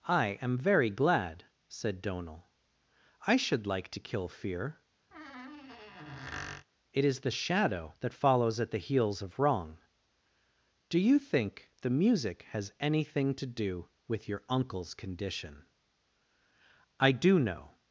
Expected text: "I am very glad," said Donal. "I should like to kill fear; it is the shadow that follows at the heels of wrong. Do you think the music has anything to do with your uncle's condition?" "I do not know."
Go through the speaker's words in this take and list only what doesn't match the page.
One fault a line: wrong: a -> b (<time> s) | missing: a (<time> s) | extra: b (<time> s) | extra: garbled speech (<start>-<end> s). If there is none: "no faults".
missing: not (17.4 s)